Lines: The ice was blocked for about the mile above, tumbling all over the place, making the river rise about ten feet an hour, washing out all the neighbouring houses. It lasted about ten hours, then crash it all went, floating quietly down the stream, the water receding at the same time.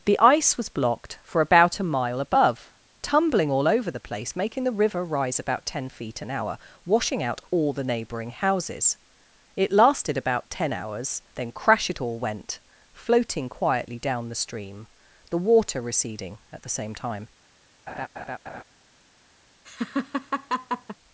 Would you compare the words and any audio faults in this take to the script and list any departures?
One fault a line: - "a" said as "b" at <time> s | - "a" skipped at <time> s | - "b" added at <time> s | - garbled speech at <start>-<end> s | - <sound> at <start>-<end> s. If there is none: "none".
- "the" said as "a" at 1.8 s
- laugh at 17.9-18.6 s
- laugh at 19.7-21.0 s